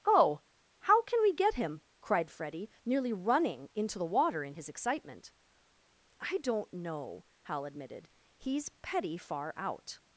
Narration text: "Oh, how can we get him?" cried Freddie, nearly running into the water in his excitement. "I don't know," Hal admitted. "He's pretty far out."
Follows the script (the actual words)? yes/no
no